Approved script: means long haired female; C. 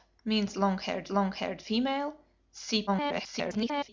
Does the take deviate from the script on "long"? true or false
false